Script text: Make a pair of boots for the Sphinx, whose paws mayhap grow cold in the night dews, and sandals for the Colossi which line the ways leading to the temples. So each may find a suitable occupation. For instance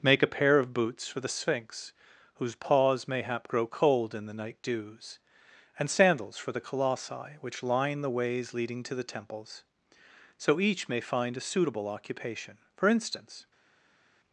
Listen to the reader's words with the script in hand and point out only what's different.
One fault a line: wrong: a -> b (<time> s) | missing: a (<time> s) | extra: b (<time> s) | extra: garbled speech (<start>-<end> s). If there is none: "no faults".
no faults